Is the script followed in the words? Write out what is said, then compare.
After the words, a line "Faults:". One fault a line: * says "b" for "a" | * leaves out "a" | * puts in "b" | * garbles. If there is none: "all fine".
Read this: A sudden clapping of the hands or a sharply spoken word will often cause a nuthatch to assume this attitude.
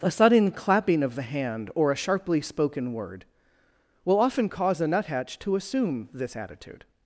A sudden clapping of the hand or a sharply spoken word will often cause a nuthatch to assume this attitude.
Faults:
* says "hand" for "hands"